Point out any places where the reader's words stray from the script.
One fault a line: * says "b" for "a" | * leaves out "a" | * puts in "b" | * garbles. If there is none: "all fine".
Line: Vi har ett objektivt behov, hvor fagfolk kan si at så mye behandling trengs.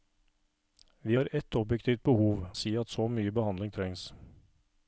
* leaves out "hvor fagfolk kan"